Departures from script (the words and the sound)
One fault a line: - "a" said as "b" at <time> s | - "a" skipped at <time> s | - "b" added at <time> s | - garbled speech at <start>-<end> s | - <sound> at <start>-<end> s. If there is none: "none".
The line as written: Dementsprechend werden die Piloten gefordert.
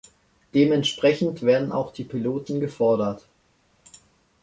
- "auch" added at 1.7 s